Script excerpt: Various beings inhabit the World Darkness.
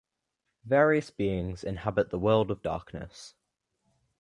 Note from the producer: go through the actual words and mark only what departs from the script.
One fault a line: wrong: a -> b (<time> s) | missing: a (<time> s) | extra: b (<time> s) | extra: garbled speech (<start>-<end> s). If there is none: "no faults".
extra: of (2.5 s)